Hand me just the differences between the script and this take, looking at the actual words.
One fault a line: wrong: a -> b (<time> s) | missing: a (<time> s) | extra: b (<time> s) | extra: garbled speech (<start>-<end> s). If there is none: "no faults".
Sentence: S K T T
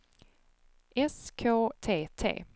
no faults